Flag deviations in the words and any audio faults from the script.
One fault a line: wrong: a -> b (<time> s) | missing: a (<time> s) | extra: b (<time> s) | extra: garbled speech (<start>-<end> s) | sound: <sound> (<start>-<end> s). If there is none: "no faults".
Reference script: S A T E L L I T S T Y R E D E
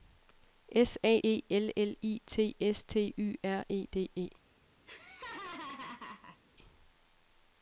missing: T (1.2 s)
sound: laugh (4.8-6.4 s)